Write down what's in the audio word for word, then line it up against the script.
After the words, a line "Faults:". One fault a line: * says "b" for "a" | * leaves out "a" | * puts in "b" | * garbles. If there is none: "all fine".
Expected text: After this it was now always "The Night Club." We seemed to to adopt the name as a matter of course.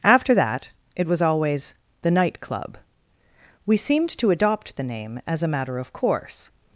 After that it was always "The Night Club." We seemed to adopt the name as a matter of course.
Faults:
* says "that" for "this"
* leaves out "now"
* leaves out "to"